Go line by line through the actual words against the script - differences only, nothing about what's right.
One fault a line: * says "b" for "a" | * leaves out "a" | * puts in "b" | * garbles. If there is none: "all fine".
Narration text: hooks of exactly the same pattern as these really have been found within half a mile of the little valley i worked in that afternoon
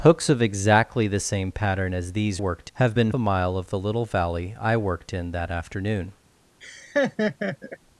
* says "worked" for "really"
* leaves out "found within half"